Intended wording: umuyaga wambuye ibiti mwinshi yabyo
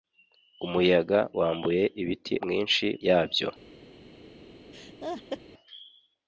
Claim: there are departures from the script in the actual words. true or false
false